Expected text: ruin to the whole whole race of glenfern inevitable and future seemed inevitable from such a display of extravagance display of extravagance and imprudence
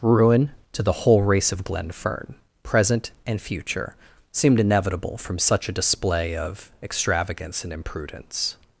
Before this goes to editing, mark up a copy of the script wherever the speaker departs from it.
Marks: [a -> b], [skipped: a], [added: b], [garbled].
ruin to the whole [skipped: whole] race of glenfern [inevitable -> present] and future seemed inevitable from such a display of extravagance [skipped: display of extravagance] and imprudence